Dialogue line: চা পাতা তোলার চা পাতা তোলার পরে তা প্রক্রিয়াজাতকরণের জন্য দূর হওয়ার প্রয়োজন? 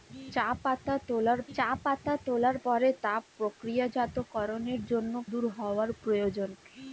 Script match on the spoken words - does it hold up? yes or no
yes